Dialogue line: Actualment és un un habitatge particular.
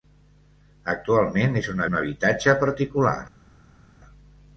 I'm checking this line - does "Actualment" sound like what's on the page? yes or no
yes